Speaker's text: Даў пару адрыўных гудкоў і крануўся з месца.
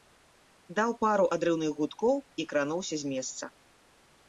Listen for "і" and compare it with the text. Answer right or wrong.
right